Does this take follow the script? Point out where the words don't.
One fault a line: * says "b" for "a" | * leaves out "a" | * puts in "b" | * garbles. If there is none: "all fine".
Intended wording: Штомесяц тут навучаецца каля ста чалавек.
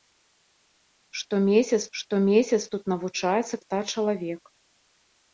* puts in "штомесяц"
* leaves out "каля"